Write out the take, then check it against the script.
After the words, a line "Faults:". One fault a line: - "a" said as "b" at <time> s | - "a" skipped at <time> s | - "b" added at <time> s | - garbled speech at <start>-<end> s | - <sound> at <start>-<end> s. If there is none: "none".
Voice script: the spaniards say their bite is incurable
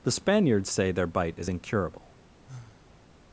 the spaniards say their bite is incurable
Faults:
- sigh at 2.4-3.1 s